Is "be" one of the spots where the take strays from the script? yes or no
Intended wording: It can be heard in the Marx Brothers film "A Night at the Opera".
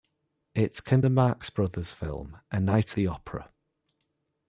yes